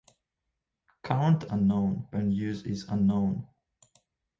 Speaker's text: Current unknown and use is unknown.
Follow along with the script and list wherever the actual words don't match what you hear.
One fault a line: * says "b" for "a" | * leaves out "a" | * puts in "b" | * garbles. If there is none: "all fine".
all fine